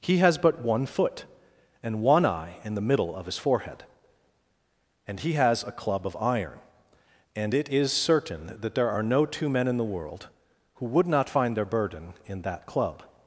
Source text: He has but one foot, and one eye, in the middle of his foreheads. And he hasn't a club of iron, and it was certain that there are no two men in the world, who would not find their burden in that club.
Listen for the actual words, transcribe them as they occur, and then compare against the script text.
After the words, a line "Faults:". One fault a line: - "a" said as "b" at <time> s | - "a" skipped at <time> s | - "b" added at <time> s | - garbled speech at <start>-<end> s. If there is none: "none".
He has but one foot, and one eye, in the middle of his forehead. And he has a club of iron, and it is certain that there are no two men in the world, who would not find their burden in that club.
Faults:
- "foreheads" said as "forehead" at 3.4 s
- "hasn't" said as "has" at 5.3 s
- "was" said as "is" at 7.7 s